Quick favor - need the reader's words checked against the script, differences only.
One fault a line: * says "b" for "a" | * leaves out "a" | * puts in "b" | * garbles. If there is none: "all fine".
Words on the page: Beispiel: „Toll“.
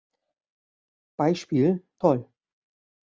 all fine